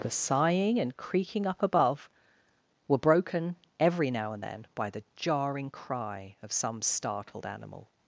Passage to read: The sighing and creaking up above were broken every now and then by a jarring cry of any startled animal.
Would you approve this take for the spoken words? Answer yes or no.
no